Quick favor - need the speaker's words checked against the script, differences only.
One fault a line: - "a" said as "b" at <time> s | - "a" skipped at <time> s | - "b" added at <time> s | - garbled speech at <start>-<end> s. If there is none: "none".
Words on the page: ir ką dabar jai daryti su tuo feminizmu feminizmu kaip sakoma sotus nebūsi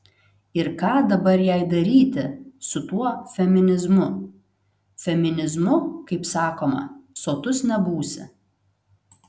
none